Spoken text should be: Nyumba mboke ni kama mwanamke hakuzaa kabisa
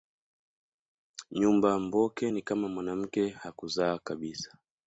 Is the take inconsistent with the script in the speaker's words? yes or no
no